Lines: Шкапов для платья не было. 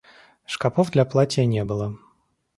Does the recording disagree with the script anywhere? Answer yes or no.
no